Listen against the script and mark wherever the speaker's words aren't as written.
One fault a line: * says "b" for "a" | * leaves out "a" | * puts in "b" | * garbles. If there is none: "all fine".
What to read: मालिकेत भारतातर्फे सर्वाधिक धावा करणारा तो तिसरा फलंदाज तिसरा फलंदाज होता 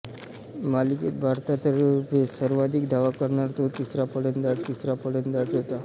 all fine